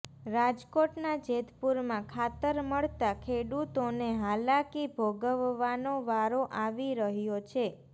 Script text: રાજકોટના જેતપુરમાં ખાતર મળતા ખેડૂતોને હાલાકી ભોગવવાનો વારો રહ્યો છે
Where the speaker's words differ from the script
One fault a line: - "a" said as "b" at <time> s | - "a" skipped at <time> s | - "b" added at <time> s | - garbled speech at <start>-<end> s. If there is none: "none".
- "આવી" added at 6.6 s